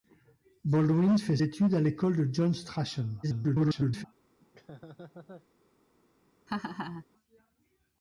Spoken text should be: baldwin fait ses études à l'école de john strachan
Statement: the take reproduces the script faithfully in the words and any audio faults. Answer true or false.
false